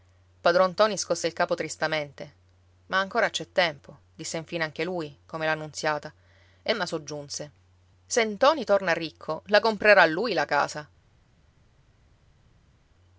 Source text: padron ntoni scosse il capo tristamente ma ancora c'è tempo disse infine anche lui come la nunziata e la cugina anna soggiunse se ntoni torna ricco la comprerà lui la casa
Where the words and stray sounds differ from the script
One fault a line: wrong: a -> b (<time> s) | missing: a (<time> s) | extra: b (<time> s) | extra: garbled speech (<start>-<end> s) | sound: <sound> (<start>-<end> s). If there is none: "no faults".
missing: la cugina (6.7 s)